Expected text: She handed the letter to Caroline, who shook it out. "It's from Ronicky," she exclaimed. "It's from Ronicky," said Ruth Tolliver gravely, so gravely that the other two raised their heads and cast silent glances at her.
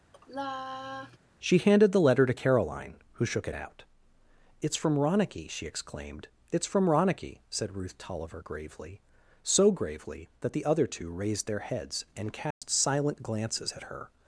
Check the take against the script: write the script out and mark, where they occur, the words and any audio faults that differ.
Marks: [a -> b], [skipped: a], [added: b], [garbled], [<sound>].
[sigh] She handed the letter to Caroline, who shook it out. "It's from Ronicky," she exclaimed. "It's from Ronicky," said Ruth Tolliver gravely, so gravely that the other two raised their heads and cast [dropout] silent glances at her.